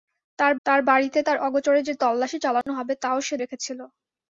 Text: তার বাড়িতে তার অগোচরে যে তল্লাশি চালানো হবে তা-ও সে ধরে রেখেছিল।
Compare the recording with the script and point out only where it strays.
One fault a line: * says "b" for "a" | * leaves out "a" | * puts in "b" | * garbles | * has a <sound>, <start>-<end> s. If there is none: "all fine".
* puts in "তার"
* has a dropout, 2.6-2.7 s
* leaves out "ধরে"